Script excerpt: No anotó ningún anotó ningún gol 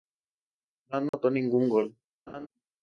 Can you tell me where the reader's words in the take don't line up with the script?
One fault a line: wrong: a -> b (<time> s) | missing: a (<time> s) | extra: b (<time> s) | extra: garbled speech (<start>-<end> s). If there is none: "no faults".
missing: anotó ningún (1.7 s)